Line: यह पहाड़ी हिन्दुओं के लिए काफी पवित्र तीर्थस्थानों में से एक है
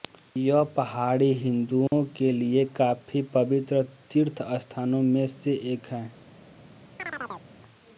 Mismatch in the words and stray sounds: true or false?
true